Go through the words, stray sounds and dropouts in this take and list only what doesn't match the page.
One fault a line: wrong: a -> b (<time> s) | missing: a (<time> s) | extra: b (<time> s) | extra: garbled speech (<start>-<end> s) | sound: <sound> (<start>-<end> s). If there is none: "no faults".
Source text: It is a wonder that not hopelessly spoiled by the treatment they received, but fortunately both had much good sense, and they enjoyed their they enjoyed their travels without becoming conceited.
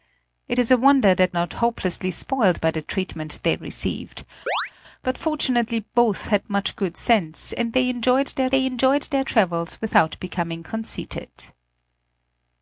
sound: chirp (4.5-4.7 s)